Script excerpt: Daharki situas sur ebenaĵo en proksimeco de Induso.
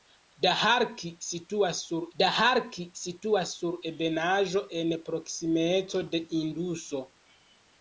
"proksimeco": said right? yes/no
yes